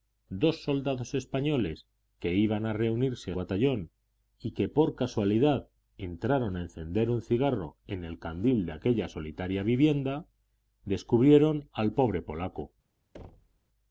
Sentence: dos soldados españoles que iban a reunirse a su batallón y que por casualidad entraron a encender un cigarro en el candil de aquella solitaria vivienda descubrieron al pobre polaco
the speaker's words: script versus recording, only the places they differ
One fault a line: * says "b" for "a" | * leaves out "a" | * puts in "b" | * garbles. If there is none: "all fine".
* leaves out "su"